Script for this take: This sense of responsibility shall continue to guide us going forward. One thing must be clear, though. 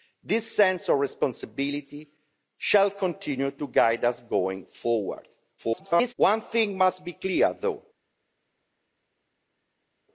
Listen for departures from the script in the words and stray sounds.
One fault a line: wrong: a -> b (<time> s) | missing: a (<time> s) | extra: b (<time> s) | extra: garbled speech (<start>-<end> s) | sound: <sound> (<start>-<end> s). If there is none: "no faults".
extra: garbled speech (5.6-6.1 s)